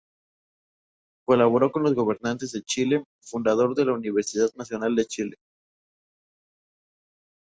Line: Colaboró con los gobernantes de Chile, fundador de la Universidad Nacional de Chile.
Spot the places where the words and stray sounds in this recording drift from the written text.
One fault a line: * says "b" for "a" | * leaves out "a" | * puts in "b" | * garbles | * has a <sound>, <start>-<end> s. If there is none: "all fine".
all fine